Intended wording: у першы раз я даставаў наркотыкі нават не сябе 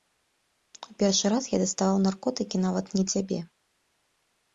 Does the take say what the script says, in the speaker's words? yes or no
yes